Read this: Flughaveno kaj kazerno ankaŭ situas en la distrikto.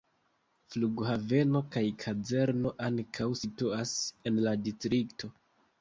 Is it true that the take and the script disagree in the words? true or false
false